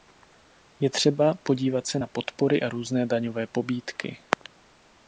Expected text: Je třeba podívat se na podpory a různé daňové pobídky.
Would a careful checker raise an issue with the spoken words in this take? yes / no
no